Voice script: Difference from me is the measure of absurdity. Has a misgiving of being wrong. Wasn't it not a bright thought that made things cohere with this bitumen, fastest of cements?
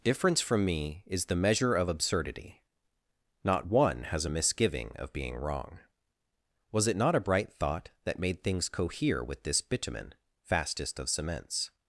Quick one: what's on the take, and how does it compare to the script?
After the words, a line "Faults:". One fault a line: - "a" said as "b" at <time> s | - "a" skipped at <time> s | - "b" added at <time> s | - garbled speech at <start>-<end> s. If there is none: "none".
Difference from me is the measure of absurdity. Not one has a misgiving of being wrong. Was it not a bright thought that made things cohere with this bitumen, fastest of cements?
Faults:
- "Not one" added at 3.4 s
- "Wasn't" said as "Was" at 6.7 s